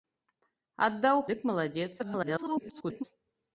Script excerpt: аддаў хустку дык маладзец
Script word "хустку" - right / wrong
wrong